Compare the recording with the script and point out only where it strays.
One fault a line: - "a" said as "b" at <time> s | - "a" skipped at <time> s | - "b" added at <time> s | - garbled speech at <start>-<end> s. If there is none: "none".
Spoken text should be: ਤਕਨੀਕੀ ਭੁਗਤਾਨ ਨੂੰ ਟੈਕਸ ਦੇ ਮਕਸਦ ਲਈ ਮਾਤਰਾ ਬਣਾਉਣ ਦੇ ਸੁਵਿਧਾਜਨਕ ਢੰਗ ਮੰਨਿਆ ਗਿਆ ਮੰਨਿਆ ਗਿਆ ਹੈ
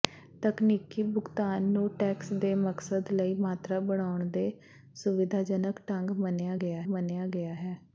none